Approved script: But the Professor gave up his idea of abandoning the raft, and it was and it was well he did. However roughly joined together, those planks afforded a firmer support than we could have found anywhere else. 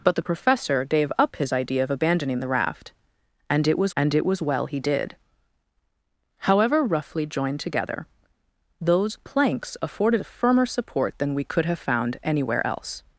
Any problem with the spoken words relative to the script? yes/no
no